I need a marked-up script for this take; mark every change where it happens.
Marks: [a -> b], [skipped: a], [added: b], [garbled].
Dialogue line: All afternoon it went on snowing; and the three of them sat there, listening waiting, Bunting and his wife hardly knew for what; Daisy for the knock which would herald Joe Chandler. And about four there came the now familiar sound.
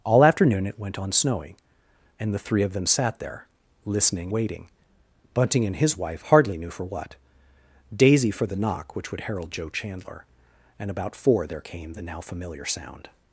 All afternoon it went on snowing; and the three of them sat there, listening waiting, Bunting and his wife hardly knew for what; Daisy for the knock which would herald Joe Chandler. And about four there came the now familiar sound.